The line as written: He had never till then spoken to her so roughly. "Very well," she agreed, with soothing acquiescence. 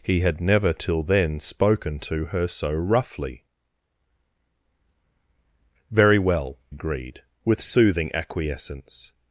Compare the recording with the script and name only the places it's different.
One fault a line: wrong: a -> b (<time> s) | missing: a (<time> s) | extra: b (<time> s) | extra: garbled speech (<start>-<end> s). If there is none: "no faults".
missing: she (6.6 s)